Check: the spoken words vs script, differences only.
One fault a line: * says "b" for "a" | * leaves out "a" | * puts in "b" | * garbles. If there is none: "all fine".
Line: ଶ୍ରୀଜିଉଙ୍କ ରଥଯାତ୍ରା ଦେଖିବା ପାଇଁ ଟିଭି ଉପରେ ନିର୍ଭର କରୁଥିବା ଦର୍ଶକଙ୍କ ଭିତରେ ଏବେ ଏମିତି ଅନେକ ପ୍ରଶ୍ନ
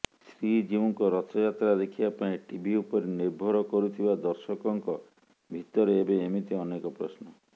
all fine